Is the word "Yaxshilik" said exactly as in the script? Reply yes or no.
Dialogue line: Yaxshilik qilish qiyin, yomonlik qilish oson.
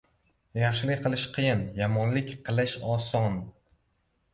yes